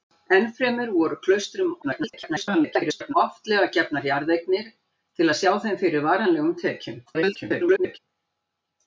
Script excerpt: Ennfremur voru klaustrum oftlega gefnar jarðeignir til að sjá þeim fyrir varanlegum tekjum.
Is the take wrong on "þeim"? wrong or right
right